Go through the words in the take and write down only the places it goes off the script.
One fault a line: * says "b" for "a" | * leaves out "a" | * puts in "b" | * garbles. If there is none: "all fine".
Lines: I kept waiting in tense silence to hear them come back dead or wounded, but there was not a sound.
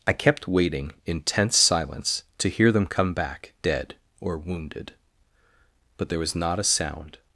all fine